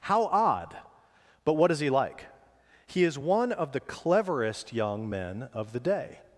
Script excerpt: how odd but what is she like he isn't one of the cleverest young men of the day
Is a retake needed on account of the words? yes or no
yes